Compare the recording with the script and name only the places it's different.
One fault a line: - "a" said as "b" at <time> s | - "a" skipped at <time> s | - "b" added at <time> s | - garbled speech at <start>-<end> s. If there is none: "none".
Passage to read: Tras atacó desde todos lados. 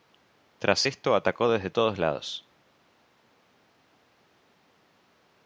- "esto" added at 0.8 s